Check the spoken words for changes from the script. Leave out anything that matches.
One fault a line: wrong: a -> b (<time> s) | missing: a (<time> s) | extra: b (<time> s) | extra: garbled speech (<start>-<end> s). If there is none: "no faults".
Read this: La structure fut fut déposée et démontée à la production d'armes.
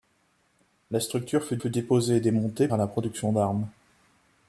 no faults